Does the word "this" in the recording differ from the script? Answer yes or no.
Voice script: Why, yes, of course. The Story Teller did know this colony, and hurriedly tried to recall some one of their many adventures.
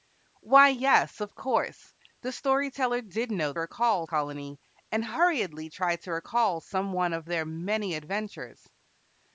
yes